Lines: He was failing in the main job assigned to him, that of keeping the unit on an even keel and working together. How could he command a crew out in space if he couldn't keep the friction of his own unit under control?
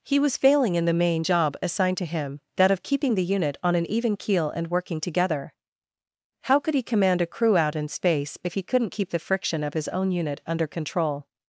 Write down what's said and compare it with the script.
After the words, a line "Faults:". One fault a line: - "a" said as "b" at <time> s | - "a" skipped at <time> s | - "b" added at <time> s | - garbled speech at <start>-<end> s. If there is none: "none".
He was failing in the main job assigned to him, that of keeping the unit on an even keel and working together. How could he command a crew out in space if he couldn't keep the friction of his own unit under control?
Faults:
none